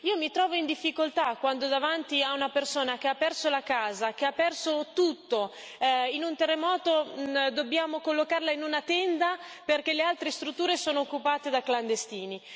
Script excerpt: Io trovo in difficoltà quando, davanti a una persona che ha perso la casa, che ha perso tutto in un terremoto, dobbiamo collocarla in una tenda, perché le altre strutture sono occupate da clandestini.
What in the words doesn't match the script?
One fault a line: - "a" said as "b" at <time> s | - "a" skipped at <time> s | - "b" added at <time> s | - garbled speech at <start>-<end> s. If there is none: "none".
- "mi" added at 0.2 s